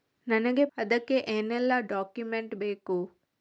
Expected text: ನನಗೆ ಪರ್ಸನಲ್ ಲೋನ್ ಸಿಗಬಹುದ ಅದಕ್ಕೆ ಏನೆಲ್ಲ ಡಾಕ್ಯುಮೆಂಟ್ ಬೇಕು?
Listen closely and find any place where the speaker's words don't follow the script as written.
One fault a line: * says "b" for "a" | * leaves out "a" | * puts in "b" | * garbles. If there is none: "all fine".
* leaves out "ಪರ್ಸನಲ್ ಲೋನ್ ಸಿಗಬಹುದ"